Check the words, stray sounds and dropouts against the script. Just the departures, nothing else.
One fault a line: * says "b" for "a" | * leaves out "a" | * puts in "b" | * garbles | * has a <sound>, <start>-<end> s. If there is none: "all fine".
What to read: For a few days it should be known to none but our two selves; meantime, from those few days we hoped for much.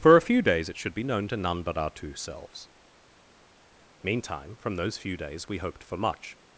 all fine